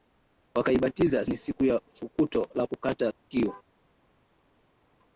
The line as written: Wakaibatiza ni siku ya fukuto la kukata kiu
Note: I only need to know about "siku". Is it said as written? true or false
true